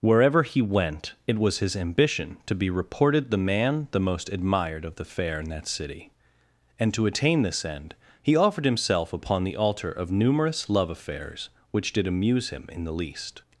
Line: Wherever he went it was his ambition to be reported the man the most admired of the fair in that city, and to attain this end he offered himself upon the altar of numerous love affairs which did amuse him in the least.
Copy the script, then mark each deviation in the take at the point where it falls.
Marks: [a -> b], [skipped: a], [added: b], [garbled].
Wherever he went it was his ambition to be reported the man the most admired of the fair in that city, and to attain this end he offered himself upon the altar of numerous love affairs which did amuse him in the least.